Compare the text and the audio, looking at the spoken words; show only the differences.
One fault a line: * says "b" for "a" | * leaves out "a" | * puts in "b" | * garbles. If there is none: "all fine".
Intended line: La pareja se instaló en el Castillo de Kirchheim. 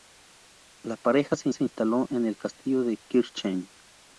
* puts in "se"